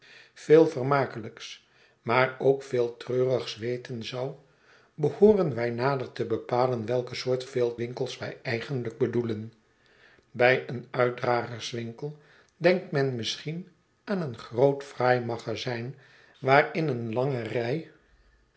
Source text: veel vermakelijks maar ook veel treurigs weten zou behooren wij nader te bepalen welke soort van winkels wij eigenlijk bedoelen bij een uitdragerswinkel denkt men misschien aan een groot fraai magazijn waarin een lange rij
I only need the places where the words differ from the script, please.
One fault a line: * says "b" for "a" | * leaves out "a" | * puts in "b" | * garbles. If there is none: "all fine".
* says "veel" for "van"